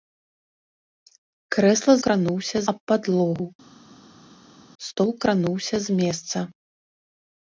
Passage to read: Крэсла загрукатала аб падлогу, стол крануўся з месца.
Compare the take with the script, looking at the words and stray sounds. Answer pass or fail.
fail